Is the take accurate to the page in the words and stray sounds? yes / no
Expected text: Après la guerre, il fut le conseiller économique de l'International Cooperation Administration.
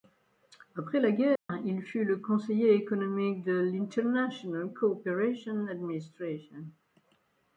no